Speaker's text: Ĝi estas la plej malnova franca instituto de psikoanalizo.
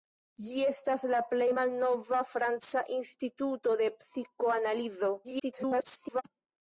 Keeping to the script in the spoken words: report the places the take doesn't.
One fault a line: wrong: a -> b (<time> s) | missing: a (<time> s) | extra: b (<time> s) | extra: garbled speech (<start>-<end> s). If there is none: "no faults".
extra: garbled speech (5.2-6.2 s)